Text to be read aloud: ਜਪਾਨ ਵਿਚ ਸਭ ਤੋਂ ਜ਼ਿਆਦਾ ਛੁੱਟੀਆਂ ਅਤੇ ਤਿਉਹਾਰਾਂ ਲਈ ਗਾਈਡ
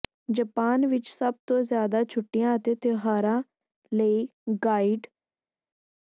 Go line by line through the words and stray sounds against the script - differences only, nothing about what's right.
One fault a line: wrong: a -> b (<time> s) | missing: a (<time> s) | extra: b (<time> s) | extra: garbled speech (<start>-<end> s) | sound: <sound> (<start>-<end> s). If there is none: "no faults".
no faults